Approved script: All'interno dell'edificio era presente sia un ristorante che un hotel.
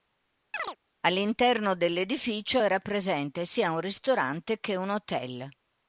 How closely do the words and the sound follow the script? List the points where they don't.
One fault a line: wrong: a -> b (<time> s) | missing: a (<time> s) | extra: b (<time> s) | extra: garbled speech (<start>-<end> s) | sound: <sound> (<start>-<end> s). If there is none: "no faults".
sound: chirp (0.5-0.8 s)